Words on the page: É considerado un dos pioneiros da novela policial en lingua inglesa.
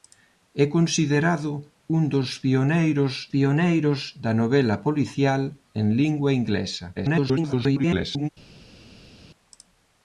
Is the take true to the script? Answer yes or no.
no